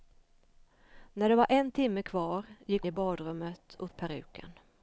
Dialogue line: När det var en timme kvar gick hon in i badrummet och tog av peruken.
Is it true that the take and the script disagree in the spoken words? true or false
true